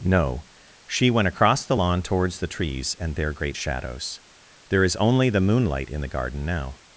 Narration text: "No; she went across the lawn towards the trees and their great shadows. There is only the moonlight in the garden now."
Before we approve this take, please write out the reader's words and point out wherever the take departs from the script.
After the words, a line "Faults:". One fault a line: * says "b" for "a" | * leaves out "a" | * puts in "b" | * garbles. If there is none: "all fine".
"No; she went across the lawn towards the trees and their great shadows. There is only the moonlight in the garden now."
Faults:
all fine